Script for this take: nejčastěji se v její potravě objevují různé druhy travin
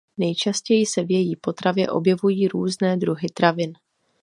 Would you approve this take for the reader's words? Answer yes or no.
yes